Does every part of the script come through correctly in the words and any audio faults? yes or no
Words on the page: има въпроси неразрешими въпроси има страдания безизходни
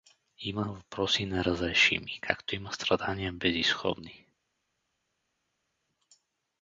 no